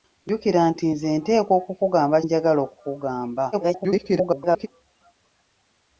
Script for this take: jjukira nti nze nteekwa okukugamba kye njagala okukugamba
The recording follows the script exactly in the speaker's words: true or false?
false